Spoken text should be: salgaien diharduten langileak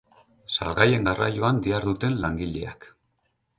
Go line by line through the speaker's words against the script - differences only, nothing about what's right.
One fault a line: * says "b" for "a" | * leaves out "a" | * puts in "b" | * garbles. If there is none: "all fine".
* puts in "garraioan"